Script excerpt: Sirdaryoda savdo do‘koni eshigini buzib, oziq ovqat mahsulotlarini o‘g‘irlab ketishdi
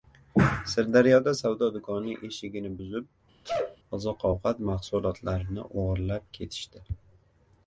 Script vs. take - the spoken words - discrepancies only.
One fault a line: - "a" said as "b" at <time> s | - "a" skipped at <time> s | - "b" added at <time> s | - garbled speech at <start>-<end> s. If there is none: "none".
none